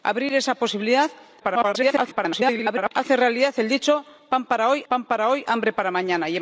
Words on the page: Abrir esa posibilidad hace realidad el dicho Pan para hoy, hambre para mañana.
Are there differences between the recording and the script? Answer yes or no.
yes